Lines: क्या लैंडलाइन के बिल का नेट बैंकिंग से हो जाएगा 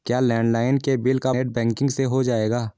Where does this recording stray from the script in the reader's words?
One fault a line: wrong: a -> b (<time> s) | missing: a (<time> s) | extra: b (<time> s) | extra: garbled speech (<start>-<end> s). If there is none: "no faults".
no faults